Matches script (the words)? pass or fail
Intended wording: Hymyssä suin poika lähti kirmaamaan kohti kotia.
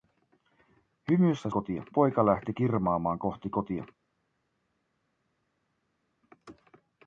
fail